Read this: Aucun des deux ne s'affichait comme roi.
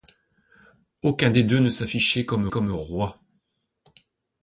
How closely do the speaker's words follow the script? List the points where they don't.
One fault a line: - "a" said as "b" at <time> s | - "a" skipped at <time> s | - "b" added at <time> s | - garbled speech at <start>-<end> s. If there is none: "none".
- "comme" added at 2.5 s